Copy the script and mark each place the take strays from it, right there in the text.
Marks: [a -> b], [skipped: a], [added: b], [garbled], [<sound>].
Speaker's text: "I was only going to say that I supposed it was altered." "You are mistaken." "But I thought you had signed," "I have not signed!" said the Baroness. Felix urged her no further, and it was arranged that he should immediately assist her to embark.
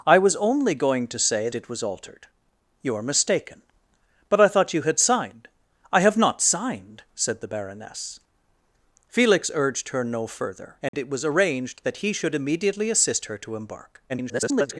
"I was only going to say [skipped: that I supposed] it was altered." "You are mistaken." "But I thought you had signed," "I have not signed!" said the Baroness. Felix urged her no further, and [dropout] it was arranged that he should immediately assist her to embark. [garbled]